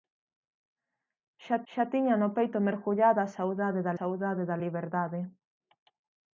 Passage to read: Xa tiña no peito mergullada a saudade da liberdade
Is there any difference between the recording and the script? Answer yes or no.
yes